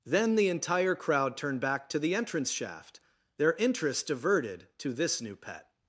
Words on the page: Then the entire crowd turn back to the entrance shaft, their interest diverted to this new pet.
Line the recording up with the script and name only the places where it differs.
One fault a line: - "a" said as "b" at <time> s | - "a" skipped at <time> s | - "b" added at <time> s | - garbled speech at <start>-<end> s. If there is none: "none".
- "turn" said as "turned" at 1.4 s